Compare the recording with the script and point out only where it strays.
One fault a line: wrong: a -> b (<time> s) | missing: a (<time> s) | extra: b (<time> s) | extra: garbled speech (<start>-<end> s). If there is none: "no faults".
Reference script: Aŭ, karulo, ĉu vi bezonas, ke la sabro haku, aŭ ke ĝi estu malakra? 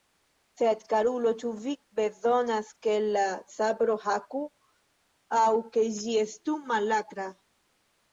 wrong: Aŭ -> Sed (0.6 s)